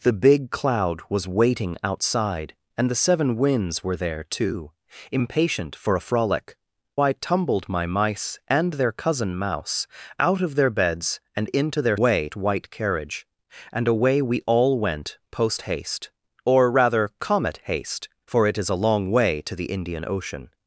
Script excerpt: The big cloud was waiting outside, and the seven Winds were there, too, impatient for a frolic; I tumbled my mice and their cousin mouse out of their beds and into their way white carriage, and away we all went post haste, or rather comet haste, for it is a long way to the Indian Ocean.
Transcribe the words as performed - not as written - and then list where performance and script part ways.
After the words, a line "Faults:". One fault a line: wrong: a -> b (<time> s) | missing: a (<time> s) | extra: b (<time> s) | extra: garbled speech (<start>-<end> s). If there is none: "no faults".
The big cloud was waiting outside, and the seven Winds were there, too, impatient for a frolic; I tumbled my mice and their cousin mouse out of their beds and into their way white carriage, and away we all went post haste, or rather comet haste, for it is a long way to the Indian Ocean.
Faults:
no faults